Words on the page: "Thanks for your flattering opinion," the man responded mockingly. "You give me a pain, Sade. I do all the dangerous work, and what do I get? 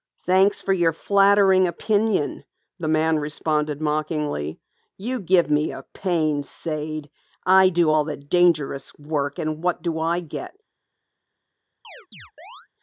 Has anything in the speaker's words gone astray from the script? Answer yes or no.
no